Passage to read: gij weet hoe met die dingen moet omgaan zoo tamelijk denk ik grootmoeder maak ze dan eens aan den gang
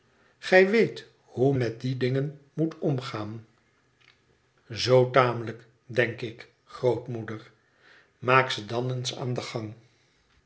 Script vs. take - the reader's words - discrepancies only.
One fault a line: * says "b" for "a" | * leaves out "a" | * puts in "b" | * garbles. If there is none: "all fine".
all fine